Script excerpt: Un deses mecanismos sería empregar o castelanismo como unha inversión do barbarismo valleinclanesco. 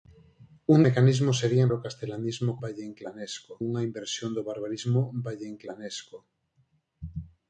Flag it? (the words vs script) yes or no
yes